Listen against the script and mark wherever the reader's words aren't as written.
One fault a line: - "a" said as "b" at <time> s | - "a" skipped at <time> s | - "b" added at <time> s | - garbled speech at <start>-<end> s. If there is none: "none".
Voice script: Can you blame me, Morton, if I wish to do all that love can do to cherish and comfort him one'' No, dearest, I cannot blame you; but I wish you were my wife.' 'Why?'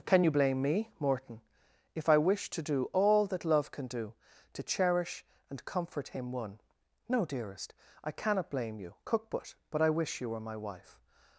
- "cook" added at 9.0 s
- "but" added at 9.7 s
- "Why" skipped at 11.0 s